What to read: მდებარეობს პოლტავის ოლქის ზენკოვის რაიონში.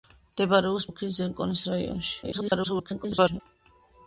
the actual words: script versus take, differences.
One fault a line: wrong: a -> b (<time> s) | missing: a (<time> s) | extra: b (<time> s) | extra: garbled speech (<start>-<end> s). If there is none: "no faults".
missing: პოლტავის (0.9 s)
extra: garbled speech (2.2-3.4 s)